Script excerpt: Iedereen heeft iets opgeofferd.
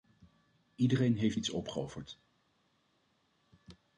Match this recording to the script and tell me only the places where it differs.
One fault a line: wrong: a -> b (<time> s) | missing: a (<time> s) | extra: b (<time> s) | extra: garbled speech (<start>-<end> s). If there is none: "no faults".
no faults